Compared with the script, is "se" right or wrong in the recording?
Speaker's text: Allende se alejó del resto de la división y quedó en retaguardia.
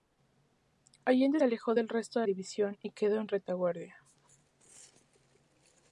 wrong